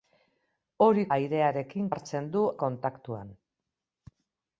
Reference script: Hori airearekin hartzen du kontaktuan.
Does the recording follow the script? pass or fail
pass